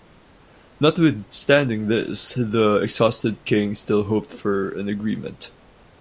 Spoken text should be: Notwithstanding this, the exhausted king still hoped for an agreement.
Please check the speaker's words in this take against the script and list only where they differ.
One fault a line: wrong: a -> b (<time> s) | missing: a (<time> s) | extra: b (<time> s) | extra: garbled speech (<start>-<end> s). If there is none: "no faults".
no faults